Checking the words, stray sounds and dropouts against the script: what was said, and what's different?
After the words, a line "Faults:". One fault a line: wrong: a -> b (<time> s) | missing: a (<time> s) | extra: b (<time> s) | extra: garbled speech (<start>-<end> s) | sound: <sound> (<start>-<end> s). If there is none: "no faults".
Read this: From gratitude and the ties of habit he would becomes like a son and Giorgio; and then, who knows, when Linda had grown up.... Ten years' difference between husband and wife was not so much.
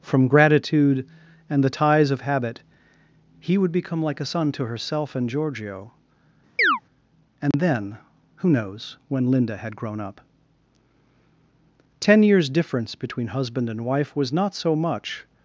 From gratitude and the ties of habit he would become like a son to herself and Giorgio; and then, who knows, when Linda had grown up.... Ten years' difference between husband and wife was not so much.
Faults:
wrong: becomes -> become (3.7 s)
extra: to herself (4.5 s)
sound: chirp (6.6-6.8 s)
sound: dropout (7.5-7.5 s)